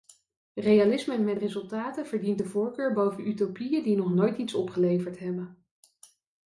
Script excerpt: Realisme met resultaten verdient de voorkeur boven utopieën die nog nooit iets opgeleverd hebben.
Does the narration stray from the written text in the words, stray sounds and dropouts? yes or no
no